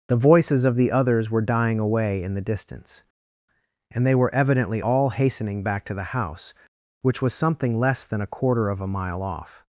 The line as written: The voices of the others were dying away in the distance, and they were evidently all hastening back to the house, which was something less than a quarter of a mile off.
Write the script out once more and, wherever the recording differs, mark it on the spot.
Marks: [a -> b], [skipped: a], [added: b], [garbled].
The voices of the others were dying away in the distance, and they were evidently all hastening back to the house, which was something less than a quarter of a mile off.